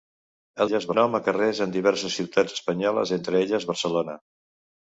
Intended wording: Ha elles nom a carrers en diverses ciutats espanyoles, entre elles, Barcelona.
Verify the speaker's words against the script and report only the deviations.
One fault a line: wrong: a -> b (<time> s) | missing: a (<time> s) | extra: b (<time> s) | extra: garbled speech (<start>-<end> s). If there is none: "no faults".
no faults